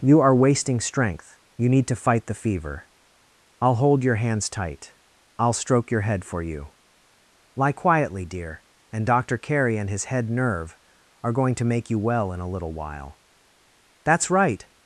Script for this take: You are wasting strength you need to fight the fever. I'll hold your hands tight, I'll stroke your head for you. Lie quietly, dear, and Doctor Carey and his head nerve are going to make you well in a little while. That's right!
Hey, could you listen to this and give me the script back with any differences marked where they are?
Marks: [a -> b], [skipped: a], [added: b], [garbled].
You are wasting strength you need to fight the fever. I'll hold your hands tight, I'll stroke your head for you. Lie quietly, dear, and Doctor Carey and his head nerve are going to make you well in a little while. That's right!